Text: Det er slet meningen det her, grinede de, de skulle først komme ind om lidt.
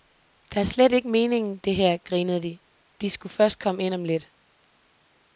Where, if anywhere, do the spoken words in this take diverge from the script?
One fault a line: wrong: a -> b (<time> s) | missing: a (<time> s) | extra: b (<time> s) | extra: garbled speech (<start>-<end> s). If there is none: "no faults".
extra: ikke (0.9 s)